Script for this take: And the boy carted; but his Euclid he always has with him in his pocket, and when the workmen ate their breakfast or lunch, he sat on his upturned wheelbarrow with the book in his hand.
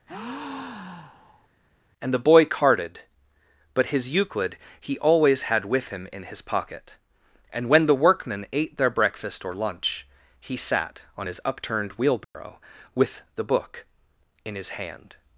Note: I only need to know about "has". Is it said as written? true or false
false